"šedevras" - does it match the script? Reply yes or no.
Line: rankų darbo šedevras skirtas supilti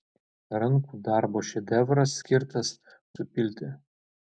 yes